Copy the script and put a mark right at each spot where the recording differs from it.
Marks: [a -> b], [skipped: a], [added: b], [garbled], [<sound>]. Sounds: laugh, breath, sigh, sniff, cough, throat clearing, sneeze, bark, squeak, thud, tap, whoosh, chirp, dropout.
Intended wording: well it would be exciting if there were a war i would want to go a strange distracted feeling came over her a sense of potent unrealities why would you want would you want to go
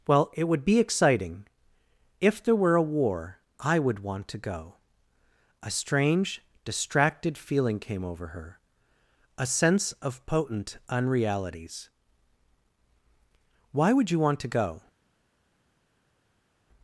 well it would be exciting if there were a war i would want to go a strange distracted feeling came over her a sense of potent unrealities why would you want [skipped: would you want] to go